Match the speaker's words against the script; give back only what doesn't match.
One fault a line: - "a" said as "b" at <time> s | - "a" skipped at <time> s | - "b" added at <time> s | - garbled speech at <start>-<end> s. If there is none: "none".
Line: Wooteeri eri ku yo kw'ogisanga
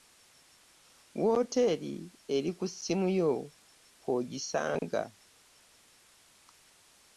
- "ssimu" added at 2.7 s